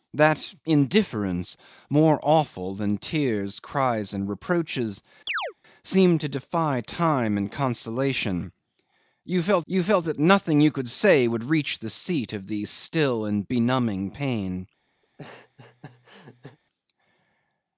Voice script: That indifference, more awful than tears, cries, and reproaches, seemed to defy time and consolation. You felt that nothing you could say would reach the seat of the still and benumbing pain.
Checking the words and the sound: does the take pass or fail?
fail